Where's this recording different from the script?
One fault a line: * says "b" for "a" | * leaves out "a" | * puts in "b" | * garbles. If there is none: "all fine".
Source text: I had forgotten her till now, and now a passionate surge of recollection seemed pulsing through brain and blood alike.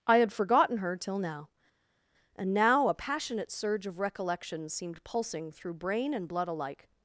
all fine